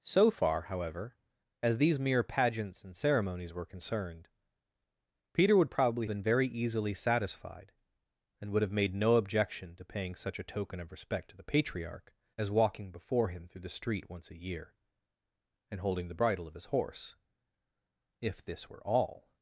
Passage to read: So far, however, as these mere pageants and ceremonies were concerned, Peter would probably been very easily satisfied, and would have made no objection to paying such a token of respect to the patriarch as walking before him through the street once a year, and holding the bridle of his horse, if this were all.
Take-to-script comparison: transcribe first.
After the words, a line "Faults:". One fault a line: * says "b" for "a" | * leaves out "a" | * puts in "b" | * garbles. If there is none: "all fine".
So far, however, as these mere pageants and ceremonies were concerned, Peter would probably been very easily satisfied, and would have made no objection to paying such a token of respect to the patriarch as walking before him through the street once a year, and holding the bridle of his horse, if this were all.
Faults:
all fine